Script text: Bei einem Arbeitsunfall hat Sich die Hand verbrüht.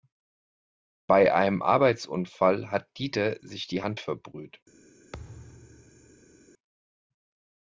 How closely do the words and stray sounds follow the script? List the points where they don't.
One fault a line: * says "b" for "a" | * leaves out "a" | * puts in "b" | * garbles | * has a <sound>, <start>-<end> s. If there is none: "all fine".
* puts in "Dieter"
* has a thud, 5.1-6.4 s